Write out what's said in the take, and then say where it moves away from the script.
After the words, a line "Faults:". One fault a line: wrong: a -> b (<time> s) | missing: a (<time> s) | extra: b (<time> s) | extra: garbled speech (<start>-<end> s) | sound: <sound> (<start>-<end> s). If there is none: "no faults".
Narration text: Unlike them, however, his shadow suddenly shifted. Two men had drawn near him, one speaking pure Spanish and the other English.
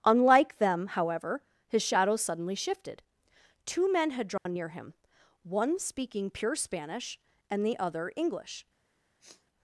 Unlike them, however, his shadow suddenly shifted. Two men had drawn near him, one speaking pure Spanish and the other English.
Faults:
sound: dropout (4.4-4.5 s)
sound: sniff (9.2-9.5 s)